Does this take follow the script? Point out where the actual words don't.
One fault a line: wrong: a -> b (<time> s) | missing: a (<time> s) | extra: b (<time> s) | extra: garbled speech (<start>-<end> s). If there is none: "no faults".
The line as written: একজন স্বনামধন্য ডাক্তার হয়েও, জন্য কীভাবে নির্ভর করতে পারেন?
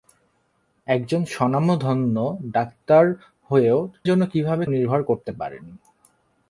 no faults